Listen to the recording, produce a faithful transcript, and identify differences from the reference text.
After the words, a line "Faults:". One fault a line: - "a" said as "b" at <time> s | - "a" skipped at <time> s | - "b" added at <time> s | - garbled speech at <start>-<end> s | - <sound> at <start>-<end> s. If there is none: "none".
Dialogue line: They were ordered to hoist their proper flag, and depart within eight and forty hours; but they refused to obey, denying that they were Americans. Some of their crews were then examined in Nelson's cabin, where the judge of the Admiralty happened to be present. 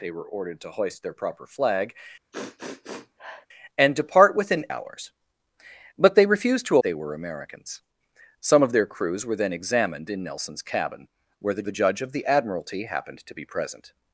They were ordered to hoist their proper flag, and depart within hours; but they refused to they were Americans. Some of their crews were then examined in Nelson's cabin, where the the judge of the Admiralty happened to be present.
Faults:
- sniff at 2.3-3.5 s
- "eight and forty" skipped at 4.7 s
- "obey denying that" skipped at 6.8 s
- "the" added at 11.6 s